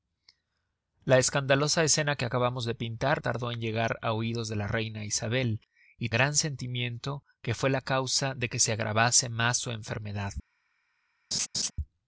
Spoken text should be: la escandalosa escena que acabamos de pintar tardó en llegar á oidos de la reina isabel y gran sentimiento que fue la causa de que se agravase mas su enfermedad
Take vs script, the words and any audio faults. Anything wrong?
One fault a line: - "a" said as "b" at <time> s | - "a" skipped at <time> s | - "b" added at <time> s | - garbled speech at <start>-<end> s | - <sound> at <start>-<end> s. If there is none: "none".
- laugh at 11.3-11.7 s